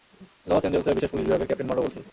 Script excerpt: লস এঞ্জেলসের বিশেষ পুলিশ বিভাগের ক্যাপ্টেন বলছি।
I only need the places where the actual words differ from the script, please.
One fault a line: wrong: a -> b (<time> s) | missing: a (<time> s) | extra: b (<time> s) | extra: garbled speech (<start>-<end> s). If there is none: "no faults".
extra: মনরো (1.7 s)